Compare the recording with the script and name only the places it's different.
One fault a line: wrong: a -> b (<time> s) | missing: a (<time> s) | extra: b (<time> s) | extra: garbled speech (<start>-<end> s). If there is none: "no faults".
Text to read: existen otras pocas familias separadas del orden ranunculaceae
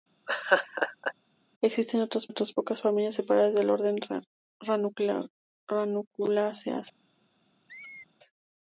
extra: otras (2.3 s)